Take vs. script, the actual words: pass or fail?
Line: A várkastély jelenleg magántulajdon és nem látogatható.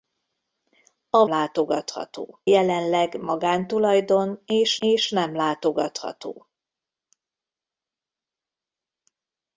fail